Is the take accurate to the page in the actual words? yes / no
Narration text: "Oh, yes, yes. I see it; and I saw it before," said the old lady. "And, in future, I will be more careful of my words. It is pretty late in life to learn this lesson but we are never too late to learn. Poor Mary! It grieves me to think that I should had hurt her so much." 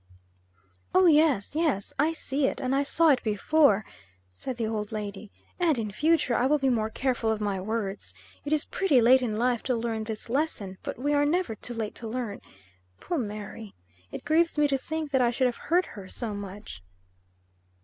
no